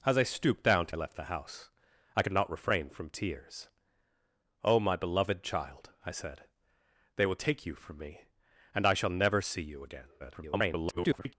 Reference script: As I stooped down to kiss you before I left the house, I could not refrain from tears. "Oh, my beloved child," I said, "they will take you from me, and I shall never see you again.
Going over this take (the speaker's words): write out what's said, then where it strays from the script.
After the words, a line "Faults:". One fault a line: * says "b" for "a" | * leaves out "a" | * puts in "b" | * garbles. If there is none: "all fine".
As I stooped down to I left the house, I could not refrain from tears. "Oh, my beloved child," I said, "they will take you from me, and I shall never see you again. [garbled]
Faults:
* leaves out "kiss you before"
* garbles